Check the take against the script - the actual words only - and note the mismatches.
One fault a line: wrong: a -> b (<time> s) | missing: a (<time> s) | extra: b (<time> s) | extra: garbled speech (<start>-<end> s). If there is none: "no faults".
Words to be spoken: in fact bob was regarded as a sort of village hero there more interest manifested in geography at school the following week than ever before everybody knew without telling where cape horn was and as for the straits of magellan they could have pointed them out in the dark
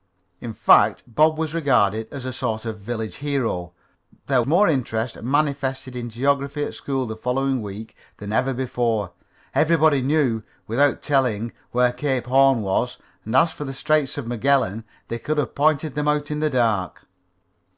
no faults